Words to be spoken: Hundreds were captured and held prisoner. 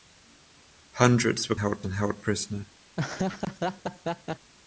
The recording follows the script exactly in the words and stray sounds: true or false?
false